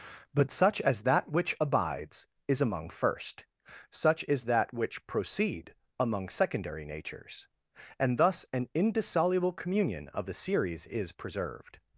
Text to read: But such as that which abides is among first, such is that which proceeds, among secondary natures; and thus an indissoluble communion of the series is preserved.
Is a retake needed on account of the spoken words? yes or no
yes